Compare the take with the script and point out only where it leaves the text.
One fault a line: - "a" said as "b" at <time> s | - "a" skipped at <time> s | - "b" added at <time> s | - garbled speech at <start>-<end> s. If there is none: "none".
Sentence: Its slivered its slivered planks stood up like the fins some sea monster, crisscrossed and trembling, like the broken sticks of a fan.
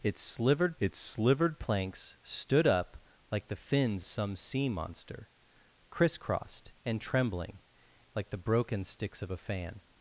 none